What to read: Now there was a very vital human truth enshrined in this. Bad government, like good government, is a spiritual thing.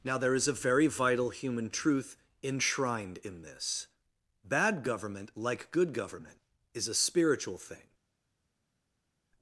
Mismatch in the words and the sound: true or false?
true